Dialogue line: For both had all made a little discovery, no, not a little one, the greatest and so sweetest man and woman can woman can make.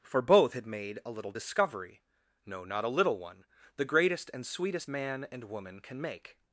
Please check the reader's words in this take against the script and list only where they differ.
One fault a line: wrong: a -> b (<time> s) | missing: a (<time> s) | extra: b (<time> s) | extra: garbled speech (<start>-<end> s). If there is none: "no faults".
missing: all (0.7 s)
missing: so (4.5 s)
missing: woman can (6.0 s)